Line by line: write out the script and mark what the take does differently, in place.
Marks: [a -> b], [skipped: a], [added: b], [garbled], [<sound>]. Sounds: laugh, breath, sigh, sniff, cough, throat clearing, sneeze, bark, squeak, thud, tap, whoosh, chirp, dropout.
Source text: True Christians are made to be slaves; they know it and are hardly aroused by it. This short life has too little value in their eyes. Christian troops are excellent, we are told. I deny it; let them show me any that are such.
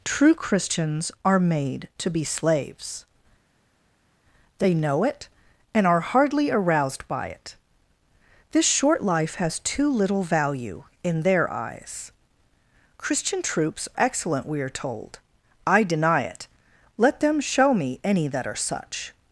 True Christians are made to be slaves; they know it and are hardly aroused by it. This short life has too little value in their eyes. Christian troops [skipped: are] excellent, we are told. I deny it; let them show me any that are such.